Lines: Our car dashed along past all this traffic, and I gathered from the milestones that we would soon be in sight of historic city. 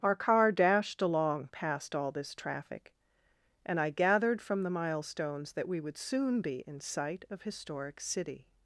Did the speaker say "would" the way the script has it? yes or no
yes